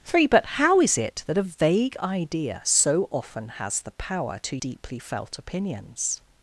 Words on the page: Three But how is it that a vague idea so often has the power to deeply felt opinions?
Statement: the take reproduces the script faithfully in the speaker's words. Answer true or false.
true